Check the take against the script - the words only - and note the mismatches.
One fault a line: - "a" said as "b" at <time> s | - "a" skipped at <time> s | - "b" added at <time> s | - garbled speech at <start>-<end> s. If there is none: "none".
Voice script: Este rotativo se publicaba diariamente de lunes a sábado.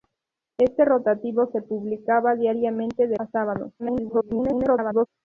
- "lunes" skipped at 3.2 s
- garbled speech at 3.8-5.1 s